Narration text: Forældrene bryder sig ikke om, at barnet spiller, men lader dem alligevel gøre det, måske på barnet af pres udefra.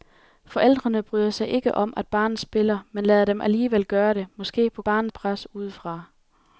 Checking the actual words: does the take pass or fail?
pass